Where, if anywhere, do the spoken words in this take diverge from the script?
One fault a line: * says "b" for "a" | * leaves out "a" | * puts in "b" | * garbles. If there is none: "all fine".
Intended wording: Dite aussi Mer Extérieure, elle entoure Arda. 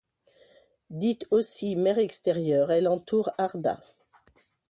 all fine